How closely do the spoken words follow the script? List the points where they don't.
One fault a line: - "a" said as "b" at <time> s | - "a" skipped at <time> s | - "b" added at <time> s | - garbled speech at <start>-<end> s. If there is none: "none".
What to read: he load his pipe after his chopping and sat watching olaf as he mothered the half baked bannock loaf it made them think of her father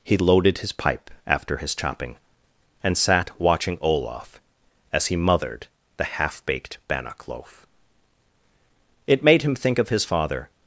- "load" said as "loaded" at 0.2 s
- "them" said as "him" at 9.4 s
- "her" said as "his" at 9.9 s